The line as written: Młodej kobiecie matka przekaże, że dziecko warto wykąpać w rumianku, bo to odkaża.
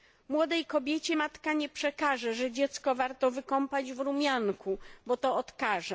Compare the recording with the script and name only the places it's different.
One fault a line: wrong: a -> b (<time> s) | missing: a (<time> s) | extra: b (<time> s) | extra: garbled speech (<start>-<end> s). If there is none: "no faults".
extra: nie (1.5 s)